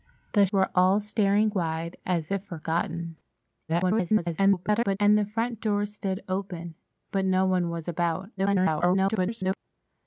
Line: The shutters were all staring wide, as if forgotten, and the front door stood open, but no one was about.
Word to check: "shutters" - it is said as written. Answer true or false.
false